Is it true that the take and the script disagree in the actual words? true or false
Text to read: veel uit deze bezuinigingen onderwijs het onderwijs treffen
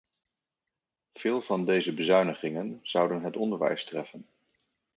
true